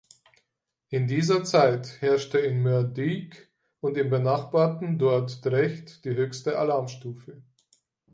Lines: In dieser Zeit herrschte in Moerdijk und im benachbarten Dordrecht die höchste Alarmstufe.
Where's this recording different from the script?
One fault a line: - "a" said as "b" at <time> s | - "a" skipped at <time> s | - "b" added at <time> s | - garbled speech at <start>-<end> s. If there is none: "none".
none